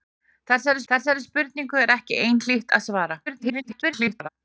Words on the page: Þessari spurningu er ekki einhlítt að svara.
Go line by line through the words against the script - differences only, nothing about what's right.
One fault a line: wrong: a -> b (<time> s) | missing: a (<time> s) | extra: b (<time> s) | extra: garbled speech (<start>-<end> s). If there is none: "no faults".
extra: þessari (0.9 s)
extra: garbled speech (3.3-4.3 s)